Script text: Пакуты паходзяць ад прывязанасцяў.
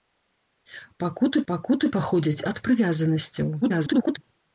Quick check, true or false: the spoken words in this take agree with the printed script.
false